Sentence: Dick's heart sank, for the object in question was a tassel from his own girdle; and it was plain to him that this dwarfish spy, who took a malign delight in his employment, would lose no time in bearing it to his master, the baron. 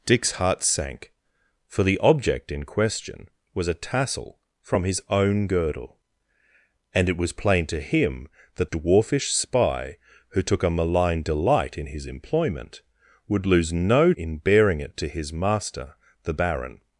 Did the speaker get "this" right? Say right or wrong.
wrong